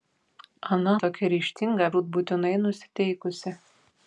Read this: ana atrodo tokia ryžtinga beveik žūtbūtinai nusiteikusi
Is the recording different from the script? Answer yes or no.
yes